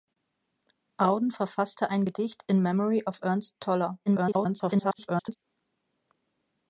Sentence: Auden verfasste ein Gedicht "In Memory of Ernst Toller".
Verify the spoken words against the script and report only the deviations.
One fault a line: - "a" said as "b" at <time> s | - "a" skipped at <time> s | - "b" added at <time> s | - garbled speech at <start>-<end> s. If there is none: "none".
- garbled speech at 4.1-5.4 s